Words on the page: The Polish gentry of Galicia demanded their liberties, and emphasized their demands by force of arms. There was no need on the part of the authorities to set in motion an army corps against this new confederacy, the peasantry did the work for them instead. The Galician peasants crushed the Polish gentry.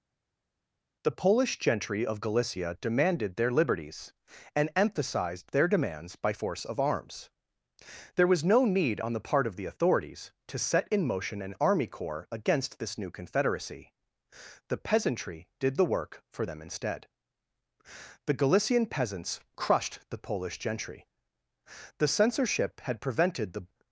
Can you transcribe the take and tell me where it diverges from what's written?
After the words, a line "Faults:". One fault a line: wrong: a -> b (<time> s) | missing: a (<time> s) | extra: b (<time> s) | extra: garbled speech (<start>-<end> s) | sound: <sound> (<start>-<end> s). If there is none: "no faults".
The Polish gentry of Galicia demanded their liberties, and emphasized their demands by force of arms. There was no need on the part of the authorities to set in motion an army corps against this new confederacy, the peasantry did the work for them instead. The Galician peasants crushed the Polish gentry. The censorship had prevented the
Faults:
extra: The censorship had prevented the (22.0 s)